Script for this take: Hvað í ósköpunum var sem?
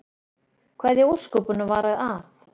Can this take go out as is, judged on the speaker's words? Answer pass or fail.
fail